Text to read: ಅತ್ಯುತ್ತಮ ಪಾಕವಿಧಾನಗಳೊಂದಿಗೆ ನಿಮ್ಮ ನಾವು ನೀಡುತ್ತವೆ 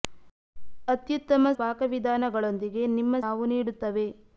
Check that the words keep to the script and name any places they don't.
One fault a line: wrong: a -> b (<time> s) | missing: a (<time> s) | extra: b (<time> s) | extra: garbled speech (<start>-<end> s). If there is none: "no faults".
no faults